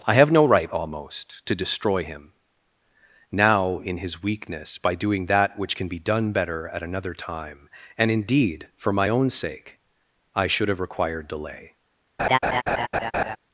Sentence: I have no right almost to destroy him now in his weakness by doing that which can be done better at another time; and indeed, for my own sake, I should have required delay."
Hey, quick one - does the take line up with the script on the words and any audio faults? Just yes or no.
no